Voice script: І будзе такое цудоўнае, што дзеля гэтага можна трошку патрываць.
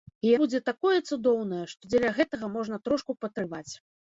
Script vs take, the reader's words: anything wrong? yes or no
no